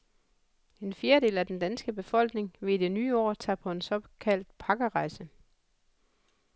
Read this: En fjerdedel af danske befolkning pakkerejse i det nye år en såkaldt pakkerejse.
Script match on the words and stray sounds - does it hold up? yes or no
no